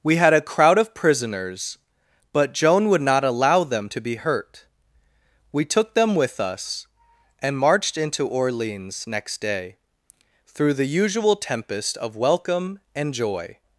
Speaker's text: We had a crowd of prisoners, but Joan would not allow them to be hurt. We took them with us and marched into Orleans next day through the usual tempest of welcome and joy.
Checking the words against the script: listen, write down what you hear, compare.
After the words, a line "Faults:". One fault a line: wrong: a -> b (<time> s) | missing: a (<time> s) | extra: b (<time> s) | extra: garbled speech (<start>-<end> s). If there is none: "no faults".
We had a crowd of prisoners, but Joan would not allow them to be hurt. We took them with us and marched into Orleans next day through the usual tempest of welcome and joy.
Faults:
no faults